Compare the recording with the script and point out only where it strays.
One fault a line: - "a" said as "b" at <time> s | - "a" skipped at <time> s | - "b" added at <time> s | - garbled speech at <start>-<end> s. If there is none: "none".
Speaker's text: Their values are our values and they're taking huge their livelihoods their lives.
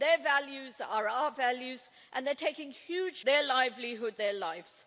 none